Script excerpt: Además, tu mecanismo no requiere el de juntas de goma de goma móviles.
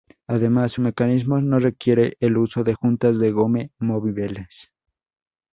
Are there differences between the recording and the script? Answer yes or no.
yes